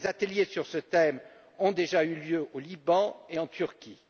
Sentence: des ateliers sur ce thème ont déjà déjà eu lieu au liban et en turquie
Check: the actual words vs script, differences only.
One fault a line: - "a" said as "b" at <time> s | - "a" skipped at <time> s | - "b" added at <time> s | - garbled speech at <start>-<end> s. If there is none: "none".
- "déjà" skipped at 2.0 s